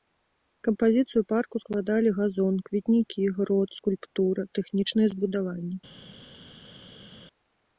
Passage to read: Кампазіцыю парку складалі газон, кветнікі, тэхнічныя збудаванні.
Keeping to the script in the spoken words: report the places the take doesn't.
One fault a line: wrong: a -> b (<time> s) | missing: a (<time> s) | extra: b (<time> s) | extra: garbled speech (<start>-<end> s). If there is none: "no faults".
extra: грот скульптура (3.4 s)